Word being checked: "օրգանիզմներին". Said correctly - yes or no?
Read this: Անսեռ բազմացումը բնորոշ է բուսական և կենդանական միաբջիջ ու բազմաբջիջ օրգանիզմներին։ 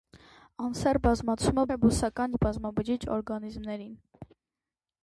yes